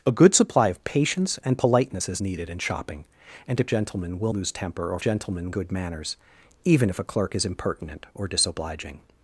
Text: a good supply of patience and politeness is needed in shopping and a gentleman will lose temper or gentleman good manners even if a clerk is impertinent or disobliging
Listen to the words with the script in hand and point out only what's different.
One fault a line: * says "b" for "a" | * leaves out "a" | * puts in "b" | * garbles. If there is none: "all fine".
all fine